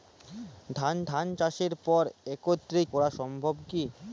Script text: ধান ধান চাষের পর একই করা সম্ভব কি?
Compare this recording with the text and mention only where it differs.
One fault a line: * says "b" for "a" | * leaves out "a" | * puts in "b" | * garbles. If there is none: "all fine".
all fine